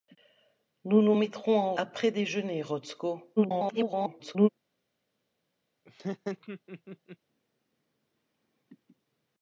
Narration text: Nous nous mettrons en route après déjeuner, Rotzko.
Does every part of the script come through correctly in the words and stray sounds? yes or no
no